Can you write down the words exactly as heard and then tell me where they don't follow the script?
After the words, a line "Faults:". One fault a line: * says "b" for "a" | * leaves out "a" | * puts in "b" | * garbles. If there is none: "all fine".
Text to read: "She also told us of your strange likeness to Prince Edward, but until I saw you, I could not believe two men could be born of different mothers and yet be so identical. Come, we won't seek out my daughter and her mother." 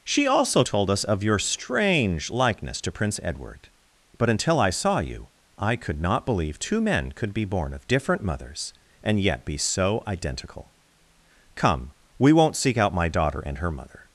"She also told us of your strange likeness to Prince Edward, but until I saw you, I could not believe two men could be born of different mothers and yet be so identical. Come, we won't seek out my daughter and her mother."
Faults:
all fine